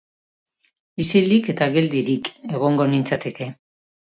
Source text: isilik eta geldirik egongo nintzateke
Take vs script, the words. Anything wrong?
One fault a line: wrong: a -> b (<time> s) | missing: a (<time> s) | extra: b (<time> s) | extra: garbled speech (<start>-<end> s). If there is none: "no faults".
no faults